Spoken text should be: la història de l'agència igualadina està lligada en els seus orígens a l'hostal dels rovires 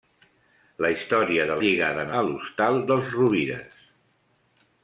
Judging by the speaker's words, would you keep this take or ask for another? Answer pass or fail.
fail